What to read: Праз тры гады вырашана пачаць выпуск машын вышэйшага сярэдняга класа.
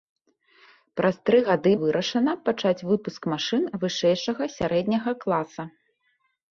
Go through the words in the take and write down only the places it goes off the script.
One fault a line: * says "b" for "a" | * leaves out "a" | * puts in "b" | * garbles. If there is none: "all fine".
all fine